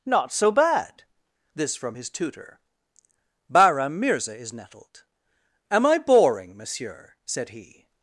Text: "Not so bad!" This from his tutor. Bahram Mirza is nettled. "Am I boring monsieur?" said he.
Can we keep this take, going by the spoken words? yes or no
yes